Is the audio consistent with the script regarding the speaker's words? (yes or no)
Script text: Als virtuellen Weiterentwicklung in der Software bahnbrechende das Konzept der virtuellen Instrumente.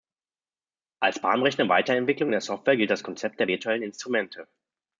no